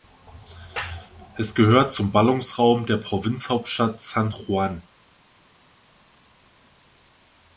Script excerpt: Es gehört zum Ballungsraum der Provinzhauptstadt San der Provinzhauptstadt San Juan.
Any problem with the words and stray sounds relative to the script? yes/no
yes